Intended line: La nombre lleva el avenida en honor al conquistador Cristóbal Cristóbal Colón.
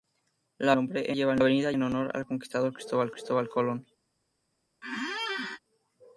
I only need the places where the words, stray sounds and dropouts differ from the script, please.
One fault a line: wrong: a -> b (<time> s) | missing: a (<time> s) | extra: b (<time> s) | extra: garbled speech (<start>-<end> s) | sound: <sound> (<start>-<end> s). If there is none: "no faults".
sound: squeak (4.8-5.6 s)